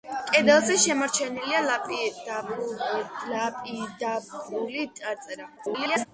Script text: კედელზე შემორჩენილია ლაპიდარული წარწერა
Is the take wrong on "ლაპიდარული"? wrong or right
right